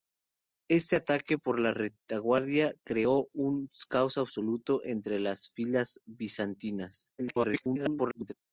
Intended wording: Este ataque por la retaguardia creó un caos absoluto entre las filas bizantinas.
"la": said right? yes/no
yes